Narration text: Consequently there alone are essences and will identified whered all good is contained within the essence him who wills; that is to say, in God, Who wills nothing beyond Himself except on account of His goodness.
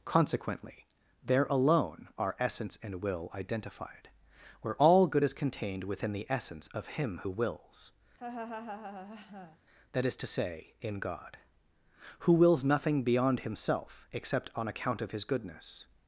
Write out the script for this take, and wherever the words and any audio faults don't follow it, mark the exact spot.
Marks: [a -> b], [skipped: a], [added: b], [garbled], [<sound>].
Consequently there alone are [essences -> essence] and will identified [whered -> where] all good is contained within the essence [added: of] him who wills; [laugh] that is to say, in God, Who wills nothing beyond Himself except on account of His goodness.